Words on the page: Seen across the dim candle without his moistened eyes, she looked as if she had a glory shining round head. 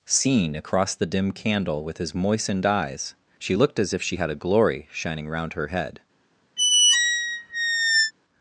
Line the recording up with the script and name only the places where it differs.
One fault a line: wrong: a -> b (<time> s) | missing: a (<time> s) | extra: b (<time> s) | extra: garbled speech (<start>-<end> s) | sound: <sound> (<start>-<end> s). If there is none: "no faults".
wrong: without -> with (1.8 s)
extra: her (5.5 s)
sound: squeak (6.6-8.1 s)